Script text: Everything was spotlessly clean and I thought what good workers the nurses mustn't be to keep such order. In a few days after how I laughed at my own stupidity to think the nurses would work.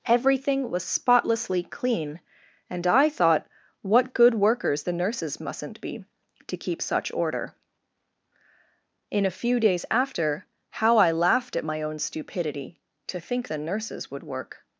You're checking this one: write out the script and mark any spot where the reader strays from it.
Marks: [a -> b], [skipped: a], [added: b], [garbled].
Everything was spotlessly clean and I thought what good workers the nurses mustn't be to keep such order. In a few days after how I laughed at my own stupidity to think the nurses would work.